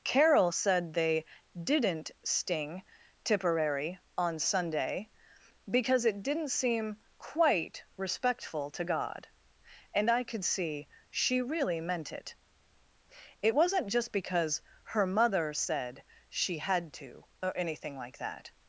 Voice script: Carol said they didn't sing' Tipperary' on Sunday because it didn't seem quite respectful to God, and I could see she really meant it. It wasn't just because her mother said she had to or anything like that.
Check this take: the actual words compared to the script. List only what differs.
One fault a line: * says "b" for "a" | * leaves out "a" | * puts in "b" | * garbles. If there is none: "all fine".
* says "sting" for "sing"